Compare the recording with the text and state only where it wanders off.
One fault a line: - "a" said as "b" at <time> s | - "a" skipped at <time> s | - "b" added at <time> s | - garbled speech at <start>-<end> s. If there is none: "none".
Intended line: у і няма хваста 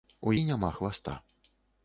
none